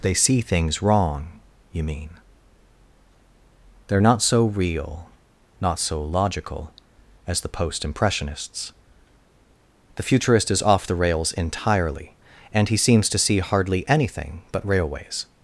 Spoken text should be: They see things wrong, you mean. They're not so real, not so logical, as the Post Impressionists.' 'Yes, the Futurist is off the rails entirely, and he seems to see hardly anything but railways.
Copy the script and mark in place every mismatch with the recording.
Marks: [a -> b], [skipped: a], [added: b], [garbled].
They see things wrong, you mean. They're not so real, not so logical, as the Post Impressionists.' [skipped: 'Yes,] the Futurist is off the rails entirely, and he seems to see hardly anything but railways.